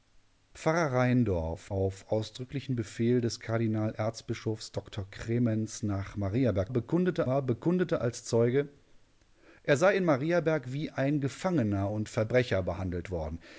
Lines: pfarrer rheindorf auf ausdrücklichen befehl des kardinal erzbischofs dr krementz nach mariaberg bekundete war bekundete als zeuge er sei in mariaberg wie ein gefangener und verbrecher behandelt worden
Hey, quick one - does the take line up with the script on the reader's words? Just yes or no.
yes